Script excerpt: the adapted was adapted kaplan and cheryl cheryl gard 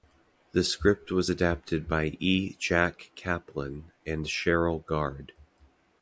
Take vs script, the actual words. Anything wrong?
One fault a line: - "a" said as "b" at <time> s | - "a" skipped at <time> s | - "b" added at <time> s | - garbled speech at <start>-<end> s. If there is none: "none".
- "adapted" said as "script" at 0.6 s
- "by e jack" added at 1.9 s
- "cheryl" skipped at 4.8 s